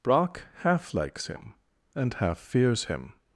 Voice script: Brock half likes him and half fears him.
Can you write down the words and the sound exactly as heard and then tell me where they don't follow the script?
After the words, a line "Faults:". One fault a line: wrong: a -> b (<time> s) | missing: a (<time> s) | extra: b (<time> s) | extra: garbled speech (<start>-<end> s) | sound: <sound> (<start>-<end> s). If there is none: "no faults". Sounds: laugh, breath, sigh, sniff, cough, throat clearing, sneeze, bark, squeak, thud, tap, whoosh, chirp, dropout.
Brock half likes him and half fears him.
Faults:
no faults